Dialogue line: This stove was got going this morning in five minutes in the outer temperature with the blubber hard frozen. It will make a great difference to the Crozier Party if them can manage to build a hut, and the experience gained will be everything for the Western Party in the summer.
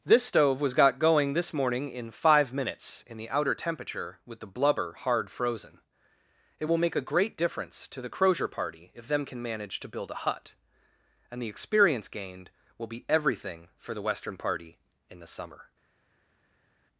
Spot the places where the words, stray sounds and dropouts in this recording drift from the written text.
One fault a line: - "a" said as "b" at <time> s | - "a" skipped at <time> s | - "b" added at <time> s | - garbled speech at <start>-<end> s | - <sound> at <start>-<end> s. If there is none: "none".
none